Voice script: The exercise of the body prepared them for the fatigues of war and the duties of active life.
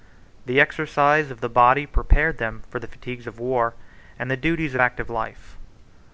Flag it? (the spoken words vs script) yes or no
no